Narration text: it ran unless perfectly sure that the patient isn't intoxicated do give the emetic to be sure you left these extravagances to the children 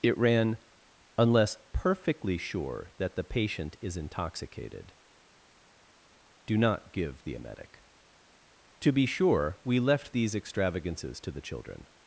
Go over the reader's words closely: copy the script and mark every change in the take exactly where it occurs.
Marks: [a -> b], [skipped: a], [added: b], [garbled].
it ran unless perfectly sure that the patient [isn't -> is] intoxicated do [added: not] give the emetic to be sure [you -> we] left these extravagances to the children